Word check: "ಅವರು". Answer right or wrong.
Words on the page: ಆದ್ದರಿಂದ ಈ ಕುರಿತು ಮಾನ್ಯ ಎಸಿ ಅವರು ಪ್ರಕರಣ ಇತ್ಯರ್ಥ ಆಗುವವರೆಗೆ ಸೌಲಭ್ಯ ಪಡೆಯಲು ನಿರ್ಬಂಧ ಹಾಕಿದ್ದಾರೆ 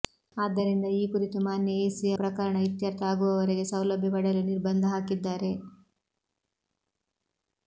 wrong